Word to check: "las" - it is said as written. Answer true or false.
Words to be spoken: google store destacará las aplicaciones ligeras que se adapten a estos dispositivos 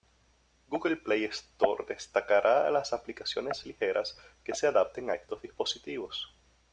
true